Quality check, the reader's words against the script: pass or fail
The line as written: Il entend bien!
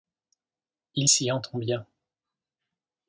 fail